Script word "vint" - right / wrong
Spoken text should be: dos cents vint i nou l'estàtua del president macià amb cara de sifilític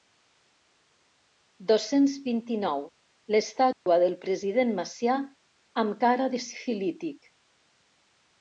right